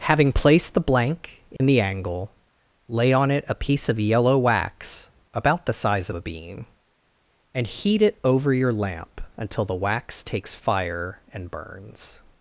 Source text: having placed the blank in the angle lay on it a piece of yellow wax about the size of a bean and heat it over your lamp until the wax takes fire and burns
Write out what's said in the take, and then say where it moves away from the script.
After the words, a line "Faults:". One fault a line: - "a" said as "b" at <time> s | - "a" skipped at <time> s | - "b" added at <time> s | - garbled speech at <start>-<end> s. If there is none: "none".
having placed the blank in the angle lay on it a piece of yellow wax about the size of a bean and heat it over your lamp until the wax takes fire and burns
Faults:
none